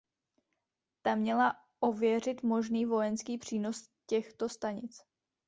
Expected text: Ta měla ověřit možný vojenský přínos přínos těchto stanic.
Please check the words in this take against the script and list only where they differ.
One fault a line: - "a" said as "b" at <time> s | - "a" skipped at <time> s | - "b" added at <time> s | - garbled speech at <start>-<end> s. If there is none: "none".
- "přínos" skipped at 3.9 s